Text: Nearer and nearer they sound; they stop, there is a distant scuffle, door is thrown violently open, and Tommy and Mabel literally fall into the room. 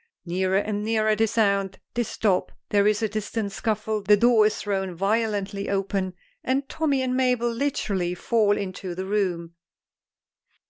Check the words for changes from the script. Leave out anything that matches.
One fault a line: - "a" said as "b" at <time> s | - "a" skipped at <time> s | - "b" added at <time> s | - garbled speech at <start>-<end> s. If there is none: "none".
- "the" added at 4.0 s